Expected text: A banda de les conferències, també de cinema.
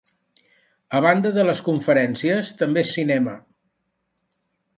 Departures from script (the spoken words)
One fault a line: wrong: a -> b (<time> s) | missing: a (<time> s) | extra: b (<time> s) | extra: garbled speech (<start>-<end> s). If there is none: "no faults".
no faults